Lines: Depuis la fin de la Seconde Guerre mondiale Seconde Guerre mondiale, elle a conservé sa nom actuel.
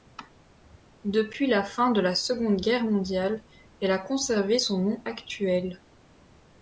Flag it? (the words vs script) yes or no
yes